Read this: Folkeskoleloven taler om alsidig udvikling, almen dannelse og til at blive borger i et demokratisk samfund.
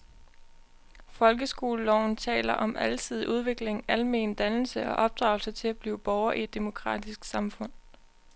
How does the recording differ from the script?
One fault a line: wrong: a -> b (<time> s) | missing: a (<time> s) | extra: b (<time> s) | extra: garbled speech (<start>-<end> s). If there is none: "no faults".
extra: opdragelse (5.0 s)